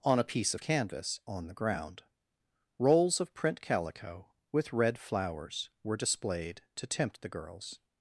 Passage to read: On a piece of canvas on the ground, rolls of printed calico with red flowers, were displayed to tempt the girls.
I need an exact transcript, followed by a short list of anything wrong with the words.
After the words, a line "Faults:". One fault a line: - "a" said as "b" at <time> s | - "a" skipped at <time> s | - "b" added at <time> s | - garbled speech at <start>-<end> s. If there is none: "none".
On a piece of canvas on the ground, rolls of print calico with red flowers, were displayed to tempt the girls.
Faults:
- "printed" said as "print" at 3.3 s